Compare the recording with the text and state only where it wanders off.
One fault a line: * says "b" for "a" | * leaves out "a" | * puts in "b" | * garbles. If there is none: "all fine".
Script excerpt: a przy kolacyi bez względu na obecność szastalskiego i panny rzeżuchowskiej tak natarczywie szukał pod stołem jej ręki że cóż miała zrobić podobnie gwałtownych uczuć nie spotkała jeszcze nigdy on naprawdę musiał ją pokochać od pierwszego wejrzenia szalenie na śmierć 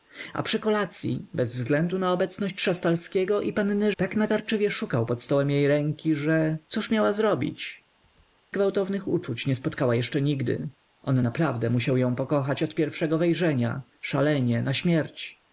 * leaves out "rzeżuchowskiej"
* leaves out "podobnie"